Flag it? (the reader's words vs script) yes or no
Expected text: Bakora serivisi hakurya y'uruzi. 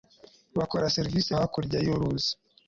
no